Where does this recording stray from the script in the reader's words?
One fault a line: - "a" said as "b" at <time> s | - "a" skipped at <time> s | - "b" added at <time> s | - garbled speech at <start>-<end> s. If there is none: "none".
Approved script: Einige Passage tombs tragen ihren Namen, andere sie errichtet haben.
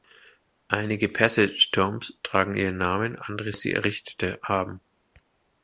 none